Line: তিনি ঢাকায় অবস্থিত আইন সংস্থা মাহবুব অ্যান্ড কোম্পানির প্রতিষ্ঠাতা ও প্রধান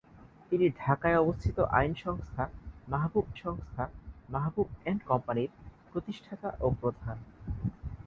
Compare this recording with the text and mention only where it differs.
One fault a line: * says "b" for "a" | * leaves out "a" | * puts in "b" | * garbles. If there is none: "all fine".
* puts in "সংস্থা মাহবুব"